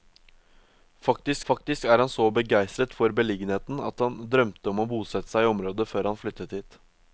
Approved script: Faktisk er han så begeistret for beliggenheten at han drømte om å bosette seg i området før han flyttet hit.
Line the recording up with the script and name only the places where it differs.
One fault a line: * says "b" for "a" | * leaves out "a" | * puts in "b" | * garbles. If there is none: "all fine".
* puts in "faktisk"